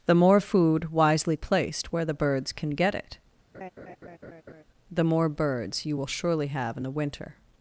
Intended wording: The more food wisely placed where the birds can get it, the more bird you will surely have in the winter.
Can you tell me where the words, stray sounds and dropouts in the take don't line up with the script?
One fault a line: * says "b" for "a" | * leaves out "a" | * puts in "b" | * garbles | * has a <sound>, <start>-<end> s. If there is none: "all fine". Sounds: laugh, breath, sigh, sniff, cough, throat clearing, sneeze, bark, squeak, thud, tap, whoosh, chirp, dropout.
* has a laugh, 3.5-4.6 s
* says "birds" for "bird"